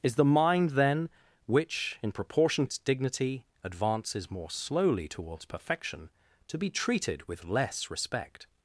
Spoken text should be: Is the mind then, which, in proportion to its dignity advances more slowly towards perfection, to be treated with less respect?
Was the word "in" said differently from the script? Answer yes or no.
no